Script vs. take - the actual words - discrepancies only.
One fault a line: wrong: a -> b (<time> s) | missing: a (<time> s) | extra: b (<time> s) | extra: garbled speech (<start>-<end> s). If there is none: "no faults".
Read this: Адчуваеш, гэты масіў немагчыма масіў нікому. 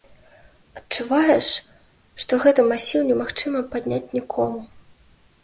extra: што (2.2 s)
wrong: масіў -> падняць (3.8 s)